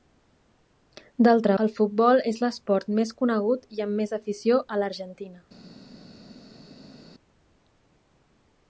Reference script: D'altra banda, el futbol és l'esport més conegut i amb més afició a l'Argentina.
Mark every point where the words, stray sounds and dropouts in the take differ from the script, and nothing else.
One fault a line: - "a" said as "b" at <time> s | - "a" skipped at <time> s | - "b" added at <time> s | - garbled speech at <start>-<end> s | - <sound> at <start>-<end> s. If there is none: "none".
- "banda" skipped at 1.6 s